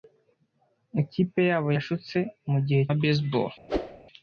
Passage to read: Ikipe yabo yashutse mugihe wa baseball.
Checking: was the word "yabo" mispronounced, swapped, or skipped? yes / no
no